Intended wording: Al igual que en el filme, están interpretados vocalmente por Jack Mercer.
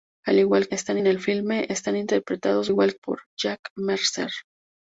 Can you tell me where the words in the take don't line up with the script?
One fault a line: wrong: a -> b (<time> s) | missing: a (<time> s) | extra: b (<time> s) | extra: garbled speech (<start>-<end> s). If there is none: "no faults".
wrong: que -> están (0.7 s)
wrong: vocalmente -> igual (2.7 s)